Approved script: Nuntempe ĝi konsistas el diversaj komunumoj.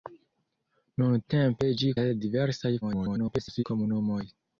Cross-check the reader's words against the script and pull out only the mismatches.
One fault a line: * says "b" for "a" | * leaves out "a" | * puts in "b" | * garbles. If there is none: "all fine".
* leaves out "konsistas"
* garbles